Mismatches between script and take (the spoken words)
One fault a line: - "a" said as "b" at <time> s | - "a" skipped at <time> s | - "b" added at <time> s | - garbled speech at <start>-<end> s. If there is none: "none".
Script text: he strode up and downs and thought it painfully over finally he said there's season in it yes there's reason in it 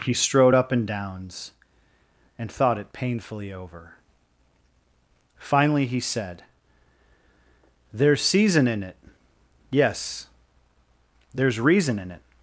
none